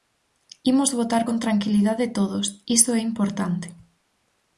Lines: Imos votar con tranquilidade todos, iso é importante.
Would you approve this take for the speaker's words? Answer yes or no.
yes